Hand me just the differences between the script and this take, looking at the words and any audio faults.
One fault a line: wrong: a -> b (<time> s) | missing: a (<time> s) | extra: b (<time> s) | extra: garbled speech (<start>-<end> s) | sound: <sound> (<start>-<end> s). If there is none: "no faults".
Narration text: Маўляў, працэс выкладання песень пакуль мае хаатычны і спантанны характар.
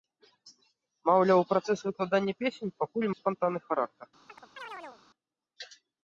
missing: мае хаатычны (3.1 s)
sound: chirp (4.3-5.0 s)